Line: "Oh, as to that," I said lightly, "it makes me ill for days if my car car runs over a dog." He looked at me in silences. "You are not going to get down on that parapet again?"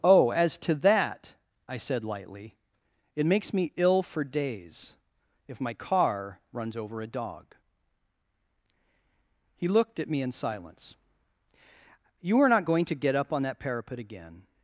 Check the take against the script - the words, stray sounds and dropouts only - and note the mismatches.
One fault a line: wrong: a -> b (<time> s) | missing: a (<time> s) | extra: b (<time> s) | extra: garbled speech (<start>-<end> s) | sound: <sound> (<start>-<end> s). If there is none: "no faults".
missing: car (6.4 s)
wrong: silences -> silence (10.3 s)
wrong: down -> up (13.2 s)